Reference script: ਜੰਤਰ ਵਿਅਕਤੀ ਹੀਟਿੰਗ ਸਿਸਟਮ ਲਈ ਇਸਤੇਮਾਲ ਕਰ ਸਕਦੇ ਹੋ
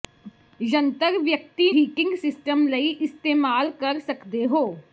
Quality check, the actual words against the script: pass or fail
pass